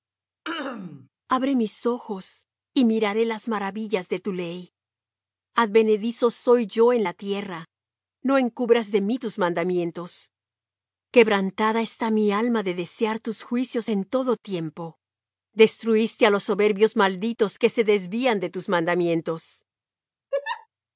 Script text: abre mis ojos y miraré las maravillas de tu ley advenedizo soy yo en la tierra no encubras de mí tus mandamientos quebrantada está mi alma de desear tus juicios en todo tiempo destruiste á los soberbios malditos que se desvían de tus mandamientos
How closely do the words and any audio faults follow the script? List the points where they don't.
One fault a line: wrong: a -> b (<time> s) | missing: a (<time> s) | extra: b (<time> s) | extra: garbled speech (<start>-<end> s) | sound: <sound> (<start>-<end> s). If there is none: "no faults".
sound: throat clearing (0.4-1.1 s)
sound: laugh (20.3-20.7 s)